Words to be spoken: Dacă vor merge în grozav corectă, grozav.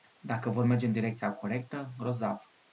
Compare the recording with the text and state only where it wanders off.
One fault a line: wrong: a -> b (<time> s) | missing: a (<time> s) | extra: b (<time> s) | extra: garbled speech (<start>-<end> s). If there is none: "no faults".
wrong: grozav -> direcția (0.9 s)